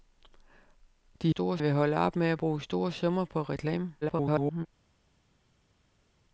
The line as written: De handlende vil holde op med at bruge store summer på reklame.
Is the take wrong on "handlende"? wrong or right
wrong